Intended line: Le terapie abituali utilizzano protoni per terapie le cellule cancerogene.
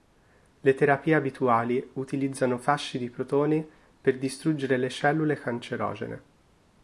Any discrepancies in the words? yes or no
yes